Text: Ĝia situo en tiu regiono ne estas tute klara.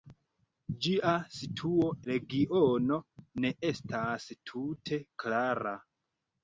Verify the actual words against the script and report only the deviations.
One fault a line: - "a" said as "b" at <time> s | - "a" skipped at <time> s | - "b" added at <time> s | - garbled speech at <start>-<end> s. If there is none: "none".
- "en tiu" skipped at 1.9 s